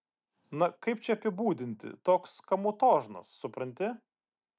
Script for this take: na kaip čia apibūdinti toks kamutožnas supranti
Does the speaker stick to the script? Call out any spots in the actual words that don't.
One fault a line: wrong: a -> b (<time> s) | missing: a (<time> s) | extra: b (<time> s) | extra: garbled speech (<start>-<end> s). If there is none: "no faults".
no faults